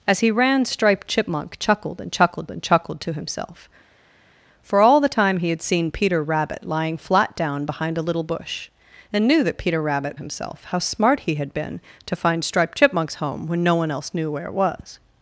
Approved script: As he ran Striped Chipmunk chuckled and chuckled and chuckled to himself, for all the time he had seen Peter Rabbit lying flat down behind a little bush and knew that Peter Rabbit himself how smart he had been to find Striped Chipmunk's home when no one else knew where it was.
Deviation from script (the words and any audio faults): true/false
false